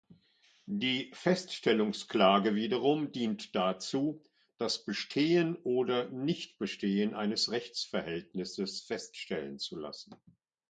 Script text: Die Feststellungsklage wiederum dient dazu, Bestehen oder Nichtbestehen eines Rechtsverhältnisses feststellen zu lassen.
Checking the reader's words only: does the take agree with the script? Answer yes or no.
no